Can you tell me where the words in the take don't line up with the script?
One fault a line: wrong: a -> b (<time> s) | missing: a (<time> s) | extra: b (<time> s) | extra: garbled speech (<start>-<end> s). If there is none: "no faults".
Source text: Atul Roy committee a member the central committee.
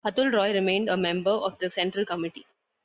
wrong: committee -> remained (0.5 s)
extra: of (1.3 s)